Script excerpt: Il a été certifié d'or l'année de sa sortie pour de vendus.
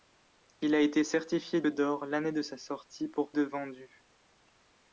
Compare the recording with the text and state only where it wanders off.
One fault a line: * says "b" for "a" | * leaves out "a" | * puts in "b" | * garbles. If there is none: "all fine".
all fine